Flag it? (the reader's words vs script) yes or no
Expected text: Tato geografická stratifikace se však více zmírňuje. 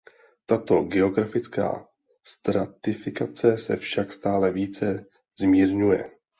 yes